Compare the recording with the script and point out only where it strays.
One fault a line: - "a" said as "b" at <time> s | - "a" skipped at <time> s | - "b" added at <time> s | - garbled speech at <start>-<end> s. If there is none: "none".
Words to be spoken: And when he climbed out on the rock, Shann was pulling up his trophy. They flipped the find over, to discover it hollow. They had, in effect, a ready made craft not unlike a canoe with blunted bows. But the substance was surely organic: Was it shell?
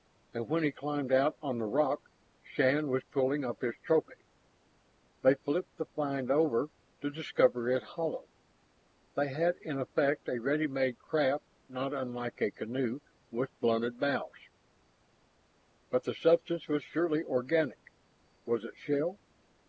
none